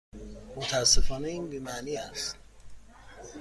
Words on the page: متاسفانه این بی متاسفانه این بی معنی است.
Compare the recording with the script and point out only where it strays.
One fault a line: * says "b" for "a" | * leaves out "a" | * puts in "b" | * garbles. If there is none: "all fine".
* leaves out "متاسفانه این بی"